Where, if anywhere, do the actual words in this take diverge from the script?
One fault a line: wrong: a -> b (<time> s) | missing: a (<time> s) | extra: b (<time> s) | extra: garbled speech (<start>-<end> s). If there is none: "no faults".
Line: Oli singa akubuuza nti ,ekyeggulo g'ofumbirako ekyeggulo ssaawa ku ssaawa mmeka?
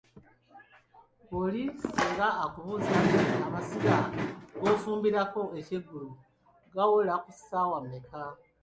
wrong: ekyeggulo -> amasiga (3.5 s)
wrong: ssaawa -> gawola (6.7 s)